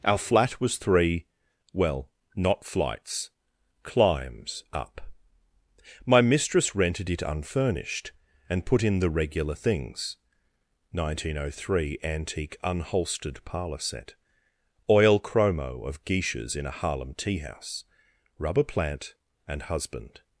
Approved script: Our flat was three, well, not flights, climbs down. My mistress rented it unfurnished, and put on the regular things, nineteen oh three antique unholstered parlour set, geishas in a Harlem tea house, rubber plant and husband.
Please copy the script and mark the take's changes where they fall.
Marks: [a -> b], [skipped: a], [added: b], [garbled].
Our flat was three, well, not flights, climbs [down. -> up] My mistress rented it unfurnished, and put [on -> in] the regular things, nineteen oh three antique unholstered parlour set, [added: oil chromo of] geishas in a Harlem tea house, rubber plant and husband.